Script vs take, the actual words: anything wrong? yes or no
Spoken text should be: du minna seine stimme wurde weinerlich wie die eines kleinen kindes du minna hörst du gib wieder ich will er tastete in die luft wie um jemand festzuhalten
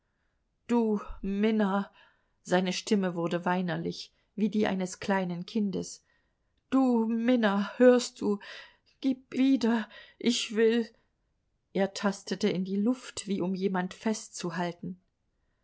no